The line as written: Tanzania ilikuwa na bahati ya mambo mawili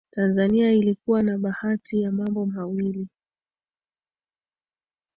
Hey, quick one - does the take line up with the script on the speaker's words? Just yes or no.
yes